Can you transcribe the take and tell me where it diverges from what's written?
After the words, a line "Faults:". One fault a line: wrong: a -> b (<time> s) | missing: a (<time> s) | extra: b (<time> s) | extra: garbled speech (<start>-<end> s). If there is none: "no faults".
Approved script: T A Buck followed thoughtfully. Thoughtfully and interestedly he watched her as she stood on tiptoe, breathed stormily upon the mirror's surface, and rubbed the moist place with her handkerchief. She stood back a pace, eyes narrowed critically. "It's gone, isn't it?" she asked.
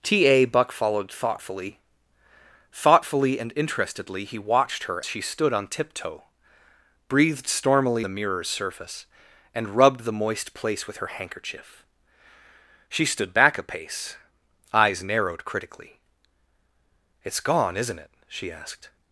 T A Buck followed thoughtfully. Thoughtfully and interestedly he watched her she stood on tiptoe, breathed stormily the mirror's surface, and rubbed the moist place with her handkerchief. She stood back a pace, eyes narrowed critically. "It's gone, isn't it?" she asked.
Faults:
missing: as (5.0 s)
missing: upon (8.1 s)